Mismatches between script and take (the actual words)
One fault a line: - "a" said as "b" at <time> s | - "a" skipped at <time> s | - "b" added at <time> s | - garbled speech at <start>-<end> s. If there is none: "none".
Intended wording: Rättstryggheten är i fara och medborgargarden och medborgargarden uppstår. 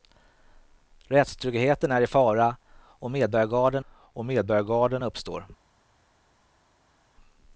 none